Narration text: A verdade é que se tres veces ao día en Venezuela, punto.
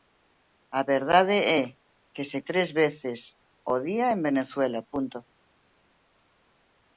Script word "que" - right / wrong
right